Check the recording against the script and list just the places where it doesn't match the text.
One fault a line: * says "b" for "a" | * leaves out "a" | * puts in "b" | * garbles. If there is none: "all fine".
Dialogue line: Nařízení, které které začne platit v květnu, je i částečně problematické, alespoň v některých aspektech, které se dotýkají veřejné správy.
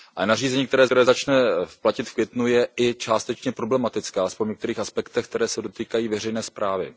all fine